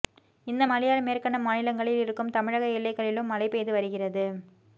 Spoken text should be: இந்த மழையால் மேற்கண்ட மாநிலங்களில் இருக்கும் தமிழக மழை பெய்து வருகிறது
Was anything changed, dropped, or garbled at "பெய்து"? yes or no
no